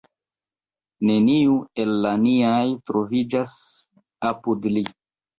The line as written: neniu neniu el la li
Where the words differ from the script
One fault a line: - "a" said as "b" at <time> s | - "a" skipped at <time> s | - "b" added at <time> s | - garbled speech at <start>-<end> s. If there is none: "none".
- "neniu" skipped at 1.6 s
- "niaj troviĝas apud" added at 2.2 s